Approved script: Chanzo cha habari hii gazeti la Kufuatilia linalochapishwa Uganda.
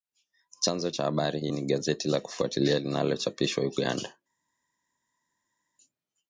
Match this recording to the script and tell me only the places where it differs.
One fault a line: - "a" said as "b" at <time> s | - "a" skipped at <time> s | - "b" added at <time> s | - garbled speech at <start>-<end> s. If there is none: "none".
- "ni" added at 1.5 s